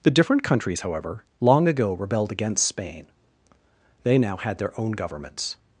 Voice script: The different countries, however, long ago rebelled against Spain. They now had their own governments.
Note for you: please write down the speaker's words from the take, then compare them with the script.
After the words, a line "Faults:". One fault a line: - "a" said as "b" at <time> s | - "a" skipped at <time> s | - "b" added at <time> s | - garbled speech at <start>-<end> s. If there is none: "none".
The different countries, however, long ago rebelled against Spain. They now had their own governments.
Faults:
none